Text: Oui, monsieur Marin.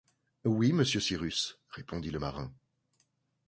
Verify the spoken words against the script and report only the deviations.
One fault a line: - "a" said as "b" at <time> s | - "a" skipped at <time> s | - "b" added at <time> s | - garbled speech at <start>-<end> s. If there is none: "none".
- "Cyrus répondit le" added at 1.0 s